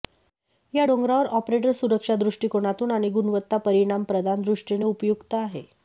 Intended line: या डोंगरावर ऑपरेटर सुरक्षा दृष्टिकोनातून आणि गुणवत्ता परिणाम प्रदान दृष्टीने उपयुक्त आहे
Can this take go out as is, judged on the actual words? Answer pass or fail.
pass